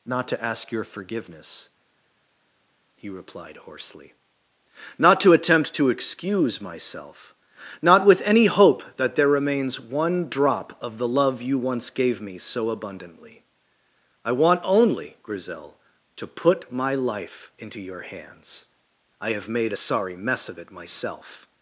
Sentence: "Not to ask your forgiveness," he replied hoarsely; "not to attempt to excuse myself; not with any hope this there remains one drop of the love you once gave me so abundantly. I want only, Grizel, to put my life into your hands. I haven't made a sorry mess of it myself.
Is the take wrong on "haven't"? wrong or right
wrong